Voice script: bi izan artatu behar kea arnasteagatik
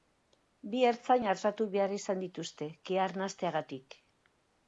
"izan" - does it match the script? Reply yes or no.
no